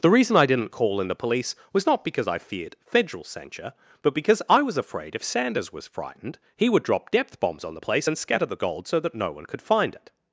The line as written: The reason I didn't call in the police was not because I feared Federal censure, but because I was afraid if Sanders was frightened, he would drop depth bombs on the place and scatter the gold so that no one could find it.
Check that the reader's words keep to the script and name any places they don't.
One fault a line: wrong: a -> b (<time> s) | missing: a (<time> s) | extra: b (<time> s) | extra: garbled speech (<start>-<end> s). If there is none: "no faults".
no faults